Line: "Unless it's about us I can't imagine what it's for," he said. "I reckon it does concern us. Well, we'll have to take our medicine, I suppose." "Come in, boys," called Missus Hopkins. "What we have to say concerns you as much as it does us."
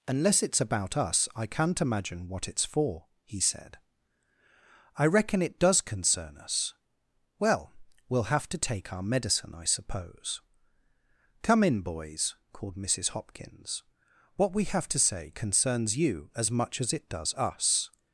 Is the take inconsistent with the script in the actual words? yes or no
no